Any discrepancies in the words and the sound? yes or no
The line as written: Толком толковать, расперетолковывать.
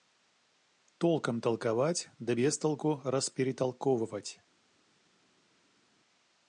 yes